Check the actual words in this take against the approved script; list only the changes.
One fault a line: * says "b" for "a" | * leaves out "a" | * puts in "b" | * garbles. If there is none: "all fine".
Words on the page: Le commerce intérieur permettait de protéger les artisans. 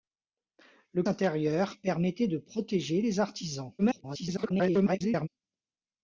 * leaves out "commerce"
* garbles